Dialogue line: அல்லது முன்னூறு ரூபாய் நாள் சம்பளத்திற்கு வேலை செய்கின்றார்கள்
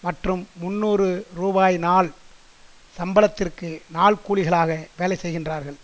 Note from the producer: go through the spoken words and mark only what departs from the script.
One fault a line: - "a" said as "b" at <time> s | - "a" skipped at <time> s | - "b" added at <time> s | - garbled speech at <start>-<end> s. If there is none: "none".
- "அல்லது" said as "மற்றும்" at 0.0 s
- "நாள் கூலிகளாக" added at 3.9 s